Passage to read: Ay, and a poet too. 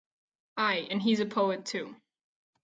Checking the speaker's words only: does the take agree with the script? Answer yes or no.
no